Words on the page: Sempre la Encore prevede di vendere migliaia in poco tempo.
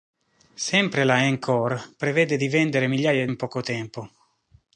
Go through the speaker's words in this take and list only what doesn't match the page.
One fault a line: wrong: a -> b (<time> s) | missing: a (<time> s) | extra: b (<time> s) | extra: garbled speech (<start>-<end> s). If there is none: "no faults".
no faults